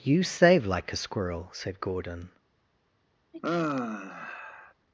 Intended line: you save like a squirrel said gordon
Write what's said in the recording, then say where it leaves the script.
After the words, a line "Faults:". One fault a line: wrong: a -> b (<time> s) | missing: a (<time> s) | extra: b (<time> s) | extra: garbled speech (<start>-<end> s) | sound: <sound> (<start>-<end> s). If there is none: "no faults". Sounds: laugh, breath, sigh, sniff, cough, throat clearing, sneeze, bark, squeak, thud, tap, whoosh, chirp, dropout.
you save like a squirrel said gordon
Faults:
sound: sigh (3.3-4.7 s)